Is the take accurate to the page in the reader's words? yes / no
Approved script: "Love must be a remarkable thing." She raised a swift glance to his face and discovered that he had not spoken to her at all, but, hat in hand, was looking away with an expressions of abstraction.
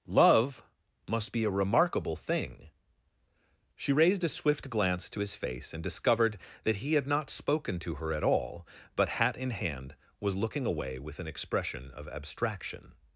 no